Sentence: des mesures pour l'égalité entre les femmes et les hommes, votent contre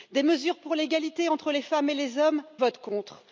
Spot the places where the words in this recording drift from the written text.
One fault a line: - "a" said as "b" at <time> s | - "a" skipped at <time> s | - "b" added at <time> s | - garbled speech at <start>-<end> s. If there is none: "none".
none